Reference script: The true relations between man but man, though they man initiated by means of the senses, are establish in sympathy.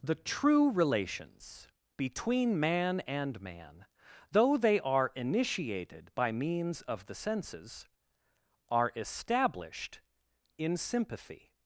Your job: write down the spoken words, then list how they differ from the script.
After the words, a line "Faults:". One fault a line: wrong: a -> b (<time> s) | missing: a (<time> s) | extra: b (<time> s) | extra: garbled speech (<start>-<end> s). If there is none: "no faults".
The true relations between man and man, though they are initiated by means of the senses, are established in sympathy.
Faults:
wrong: but -> and (3.0 s)
wrong: man -> are (4.8 s)
wrong: establish -> established (8.9 s)